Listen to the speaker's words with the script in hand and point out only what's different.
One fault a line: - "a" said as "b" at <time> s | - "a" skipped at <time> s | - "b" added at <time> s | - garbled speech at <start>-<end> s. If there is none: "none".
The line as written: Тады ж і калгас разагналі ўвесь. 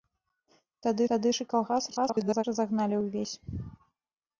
- "тады" added at 1.1 s
- garbled speech at 1.9-2.4 s